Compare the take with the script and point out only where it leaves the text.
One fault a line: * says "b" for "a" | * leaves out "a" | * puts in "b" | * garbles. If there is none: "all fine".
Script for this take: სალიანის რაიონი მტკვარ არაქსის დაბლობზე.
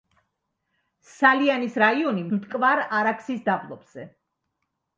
all fine